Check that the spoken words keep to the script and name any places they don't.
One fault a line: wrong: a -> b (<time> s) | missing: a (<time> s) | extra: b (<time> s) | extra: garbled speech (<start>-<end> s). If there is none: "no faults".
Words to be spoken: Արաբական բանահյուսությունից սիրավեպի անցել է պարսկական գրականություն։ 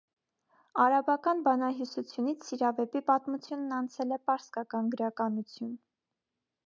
extra: պատմությունն (3.1 s)